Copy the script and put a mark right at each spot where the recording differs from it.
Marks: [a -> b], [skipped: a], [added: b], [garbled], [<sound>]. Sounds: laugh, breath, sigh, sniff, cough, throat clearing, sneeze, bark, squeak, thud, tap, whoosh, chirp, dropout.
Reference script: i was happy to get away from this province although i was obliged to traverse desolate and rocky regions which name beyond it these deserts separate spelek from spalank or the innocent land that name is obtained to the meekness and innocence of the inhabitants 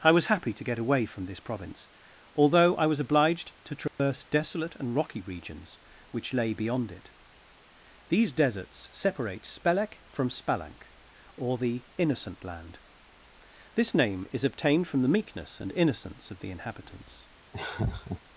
i was happy to get away from this province although i was obliged to traverse [dropout] desolate and rocky regions which [name -> lay] beyond it these deserts separate spelek from spalank or the innocent land [that -> this] name is obtained [to -> from] the meekness and innocence of the inhabitants [laugh]